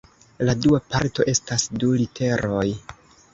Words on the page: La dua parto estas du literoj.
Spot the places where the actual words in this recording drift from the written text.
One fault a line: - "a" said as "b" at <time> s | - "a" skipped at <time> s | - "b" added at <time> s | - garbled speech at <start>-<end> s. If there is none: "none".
none